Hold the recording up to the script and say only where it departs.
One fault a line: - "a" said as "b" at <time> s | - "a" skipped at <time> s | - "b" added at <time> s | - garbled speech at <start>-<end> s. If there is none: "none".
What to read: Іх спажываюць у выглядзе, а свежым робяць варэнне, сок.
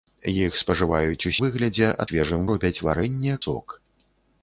none